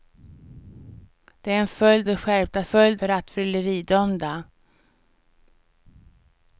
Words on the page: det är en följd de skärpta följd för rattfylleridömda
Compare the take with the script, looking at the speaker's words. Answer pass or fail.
pass